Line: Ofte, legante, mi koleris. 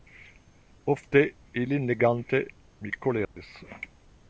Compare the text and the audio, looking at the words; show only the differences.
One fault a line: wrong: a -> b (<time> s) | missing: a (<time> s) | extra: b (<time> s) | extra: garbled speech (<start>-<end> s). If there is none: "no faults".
extra: ilin (1.6 s)